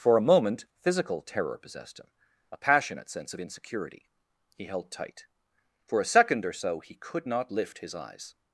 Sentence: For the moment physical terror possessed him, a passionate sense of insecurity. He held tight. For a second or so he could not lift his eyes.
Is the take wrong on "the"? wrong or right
wrong